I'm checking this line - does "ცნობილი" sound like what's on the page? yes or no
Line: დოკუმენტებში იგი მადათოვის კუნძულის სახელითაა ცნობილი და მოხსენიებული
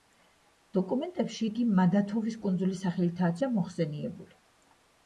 no